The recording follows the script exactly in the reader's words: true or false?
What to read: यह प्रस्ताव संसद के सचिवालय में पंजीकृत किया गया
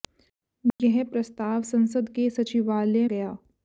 false